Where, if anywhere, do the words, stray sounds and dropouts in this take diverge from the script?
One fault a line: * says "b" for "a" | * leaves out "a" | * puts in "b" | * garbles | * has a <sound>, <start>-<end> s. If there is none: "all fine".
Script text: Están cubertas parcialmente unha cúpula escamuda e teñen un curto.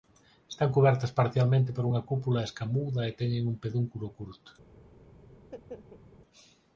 * puts in "por"
* puts in "pedúnculo"
* has a laugh, 5.4-6.0 s